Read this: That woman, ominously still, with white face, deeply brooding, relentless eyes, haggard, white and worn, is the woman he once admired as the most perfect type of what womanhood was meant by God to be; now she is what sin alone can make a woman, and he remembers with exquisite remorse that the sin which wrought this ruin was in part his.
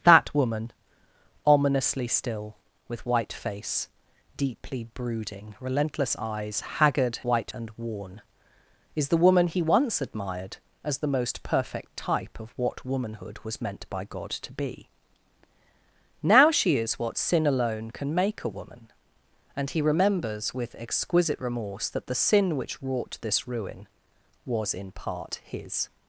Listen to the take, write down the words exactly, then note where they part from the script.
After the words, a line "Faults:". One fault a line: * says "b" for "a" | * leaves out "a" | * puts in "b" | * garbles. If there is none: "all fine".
That woman, ominously still, with white face, deeply brooding, relentless eyes, haggard, white and worn, is the woman he once admired as the most perfect type of what womanhood was meant by God to be; now she is what sin alone can make a woman, and he remembers with exquisite remorse that the sin which wrought this ruin was in part his.
Faults:
all fine